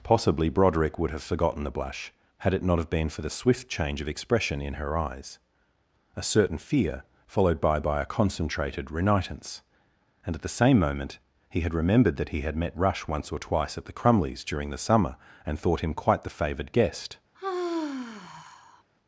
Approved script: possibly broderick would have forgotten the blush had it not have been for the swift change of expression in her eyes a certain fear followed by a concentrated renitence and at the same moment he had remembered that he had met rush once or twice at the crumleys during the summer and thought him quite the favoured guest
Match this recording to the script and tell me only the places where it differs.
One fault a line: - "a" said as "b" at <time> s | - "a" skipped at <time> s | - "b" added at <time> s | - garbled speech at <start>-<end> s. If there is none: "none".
- "by" added at 7.8 s